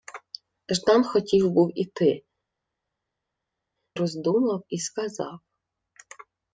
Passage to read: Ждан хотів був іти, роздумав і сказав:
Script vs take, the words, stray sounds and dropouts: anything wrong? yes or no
no